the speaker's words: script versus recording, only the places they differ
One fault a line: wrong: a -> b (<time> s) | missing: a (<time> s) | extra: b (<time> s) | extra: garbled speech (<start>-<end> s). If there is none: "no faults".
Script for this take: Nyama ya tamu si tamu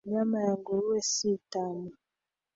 wrong: tamu -> nguruwe (0.6 s)